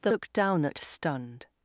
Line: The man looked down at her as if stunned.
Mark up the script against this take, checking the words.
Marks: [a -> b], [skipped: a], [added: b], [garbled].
The [skipped: man] looked down at [skipped: her as if] stunned.